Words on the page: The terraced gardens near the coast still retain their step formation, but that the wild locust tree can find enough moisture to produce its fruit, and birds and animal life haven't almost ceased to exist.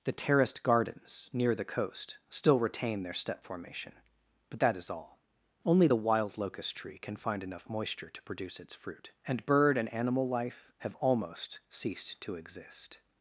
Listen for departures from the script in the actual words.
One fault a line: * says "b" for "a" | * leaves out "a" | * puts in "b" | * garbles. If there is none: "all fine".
* puts in "is all Only"
* says "bird" for "birds"
* says "have" for "haven't"